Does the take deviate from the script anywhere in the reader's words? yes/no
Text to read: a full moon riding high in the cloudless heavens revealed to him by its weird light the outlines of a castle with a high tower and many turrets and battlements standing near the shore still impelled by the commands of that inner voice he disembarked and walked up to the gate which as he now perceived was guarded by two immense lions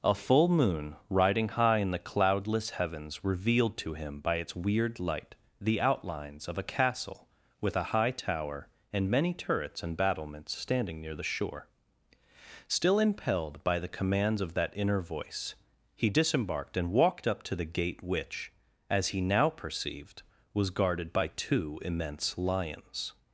no